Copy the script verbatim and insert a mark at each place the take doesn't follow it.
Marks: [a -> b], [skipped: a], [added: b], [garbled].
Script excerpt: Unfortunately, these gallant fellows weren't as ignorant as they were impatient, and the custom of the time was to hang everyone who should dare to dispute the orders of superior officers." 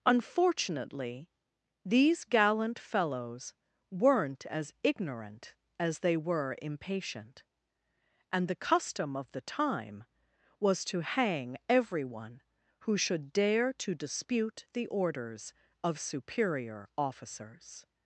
Unfortunately, these gallant fellows weren't as ignorant as they were impatient, and the custom of the time was to hang everyone who should dare to dispute the orders of superior officers."